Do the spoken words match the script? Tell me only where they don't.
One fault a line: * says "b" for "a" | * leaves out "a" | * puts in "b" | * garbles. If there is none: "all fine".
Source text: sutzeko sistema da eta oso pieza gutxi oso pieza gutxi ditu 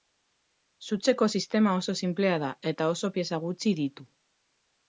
* puts in "oso sinplea"
* leaves out "oso pieza gutxi"